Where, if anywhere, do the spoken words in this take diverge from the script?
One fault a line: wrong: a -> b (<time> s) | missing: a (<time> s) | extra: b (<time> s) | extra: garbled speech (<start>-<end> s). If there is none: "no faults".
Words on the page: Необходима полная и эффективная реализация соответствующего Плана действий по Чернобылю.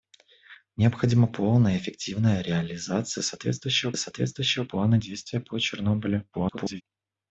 extra: соответствующего (4.0 s)
extra: garbled speech (6.3-6.8 s)